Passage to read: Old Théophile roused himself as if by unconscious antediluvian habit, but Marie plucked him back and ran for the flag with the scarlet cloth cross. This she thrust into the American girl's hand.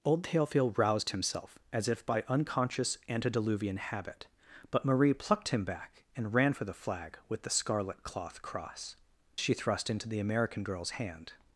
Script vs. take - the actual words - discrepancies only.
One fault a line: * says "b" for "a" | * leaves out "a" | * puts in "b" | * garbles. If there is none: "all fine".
* leaves out "This"